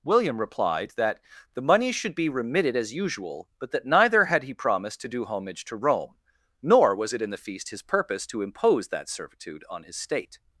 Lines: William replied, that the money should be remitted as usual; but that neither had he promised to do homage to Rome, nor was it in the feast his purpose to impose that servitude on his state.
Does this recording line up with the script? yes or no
yes